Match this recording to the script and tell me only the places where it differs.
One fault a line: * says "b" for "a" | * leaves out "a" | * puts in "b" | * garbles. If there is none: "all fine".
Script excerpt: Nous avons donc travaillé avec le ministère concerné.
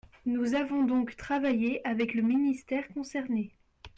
all fine